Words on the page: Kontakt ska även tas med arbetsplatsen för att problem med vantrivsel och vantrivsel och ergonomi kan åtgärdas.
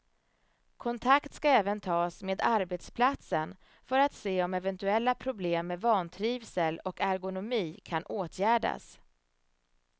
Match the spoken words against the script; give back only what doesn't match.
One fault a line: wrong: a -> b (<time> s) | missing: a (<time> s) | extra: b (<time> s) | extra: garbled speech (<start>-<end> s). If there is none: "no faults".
extra: se om eventuella (4.1 s)
missing: vantrivsel och (7.0 s)